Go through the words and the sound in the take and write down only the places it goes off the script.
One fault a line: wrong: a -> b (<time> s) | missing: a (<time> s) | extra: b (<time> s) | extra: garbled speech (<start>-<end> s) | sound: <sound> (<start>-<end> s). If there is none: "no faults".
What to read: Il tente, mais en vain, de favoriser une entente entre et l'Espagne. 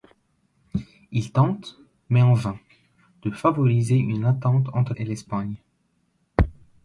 no faults